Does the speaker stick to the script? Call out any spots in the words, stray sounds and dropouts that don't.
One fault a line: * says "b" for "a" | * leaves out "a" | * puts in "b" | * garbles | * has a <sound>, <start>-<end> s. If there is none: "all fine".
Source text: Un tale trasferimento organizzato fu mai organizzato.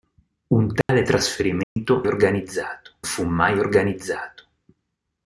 * has a dropout, 0.8-0.9 s
* has a dropout, 1.6-1.8 s